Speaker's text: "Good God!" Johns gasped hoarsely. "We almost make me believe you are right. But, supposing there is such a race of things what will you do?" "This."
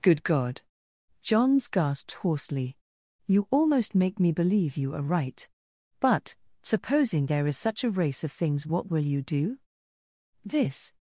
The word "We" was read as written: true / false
false